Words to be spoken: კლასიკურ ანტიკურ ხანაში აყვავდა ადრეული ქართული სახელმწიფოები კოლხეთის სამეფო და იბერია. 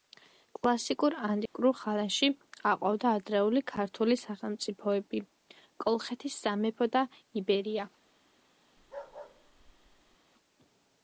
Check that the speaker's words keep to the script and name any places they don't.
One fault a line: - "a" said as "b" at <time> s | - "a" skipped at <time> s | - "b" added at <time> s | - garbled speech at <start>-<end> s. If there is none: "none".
none